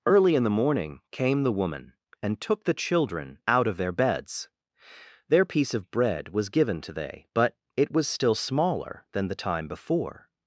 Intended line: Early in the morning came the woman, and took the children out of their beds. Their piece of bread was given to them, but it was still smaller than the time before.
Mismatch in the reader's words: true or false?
true